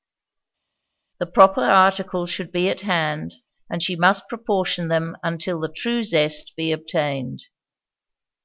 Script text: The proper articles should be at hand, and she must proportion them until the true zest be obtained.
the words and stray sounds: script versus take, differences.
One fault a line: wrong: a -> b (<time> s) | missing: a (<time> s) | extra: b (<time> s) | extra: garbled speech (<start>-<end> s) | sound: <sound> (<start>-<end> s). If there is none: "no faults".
no faults